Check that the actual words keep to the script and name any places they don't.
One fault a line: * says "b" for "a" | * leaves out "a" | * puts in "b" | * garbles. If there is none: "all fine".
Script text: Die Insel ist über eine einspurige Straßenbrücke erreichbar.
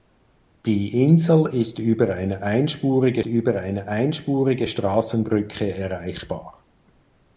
* puts in "über eine einspurige"